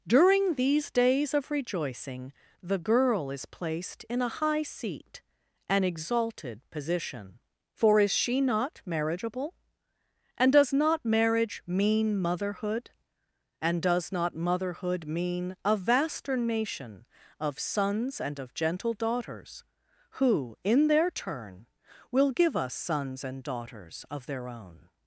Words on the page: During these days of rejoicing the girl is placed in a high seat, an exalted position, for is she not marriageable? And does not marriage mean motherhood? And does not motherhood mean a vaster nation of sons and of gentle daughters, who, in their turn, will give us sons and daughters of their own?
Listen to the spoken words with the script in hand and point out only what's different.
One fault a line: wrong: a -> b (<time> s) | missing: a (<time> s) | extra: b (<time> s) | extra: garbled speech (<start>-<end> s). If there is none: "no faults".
no faults